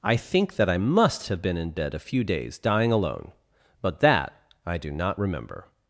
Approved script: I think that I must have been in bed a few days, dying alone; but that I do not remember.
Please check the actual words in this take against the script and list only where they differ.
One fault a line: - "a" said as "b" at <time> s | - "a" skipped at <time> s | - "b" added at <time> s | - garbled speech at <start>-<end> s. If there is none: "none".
none